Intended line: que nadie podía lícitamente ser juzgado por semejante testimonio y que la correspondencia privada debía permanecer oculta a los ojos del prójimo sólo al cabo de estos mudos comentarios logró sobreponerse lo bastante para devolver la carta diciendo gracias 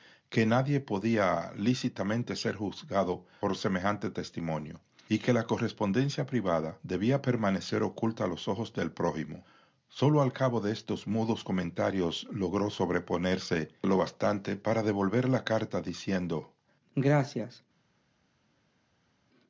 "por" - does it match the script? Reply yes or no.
yes